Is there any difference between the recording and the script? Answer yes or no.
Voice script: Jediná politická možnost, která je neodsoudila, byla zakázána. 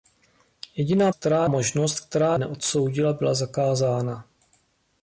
yes